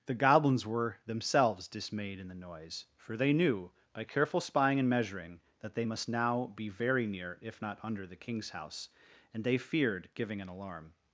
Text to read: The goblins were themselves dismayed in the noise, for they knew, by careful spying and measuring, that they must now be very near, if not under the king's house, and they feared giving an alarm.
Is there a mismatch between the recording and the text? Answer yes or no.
no